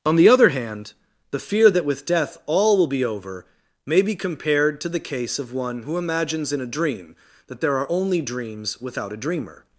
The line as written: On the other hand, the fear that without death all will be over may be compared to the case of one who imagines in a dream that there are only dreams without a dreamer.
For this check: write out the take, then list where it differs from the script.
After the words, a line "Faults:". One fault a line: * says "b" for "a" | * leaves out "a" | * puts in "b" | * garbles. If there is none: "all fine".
On the other hand, the fear that with death all will be over may be compared to the case of one who imagines in a dream that there are only dreams without a dreamer.
Faults:
* says "with" for "without"